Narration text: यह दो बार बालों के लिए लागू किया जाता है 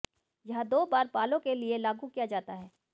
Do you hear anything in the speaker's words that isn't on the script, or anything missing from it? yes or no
no